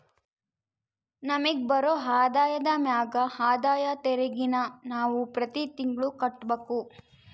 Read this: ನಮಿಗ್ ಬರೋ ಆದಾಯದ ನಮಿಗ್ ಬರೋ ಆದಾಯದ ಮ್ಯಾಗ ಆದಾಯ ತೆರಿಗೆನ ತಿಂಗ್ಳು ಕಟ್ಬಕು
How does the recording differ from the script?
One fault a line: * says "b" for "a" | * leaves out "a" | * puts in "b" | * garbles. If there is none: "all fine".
* leaves out "ನಮಿಗ್ ಬರೋ ಆದಾಯದ"
* puts in "ನಾವು ಪ್ರತಿ"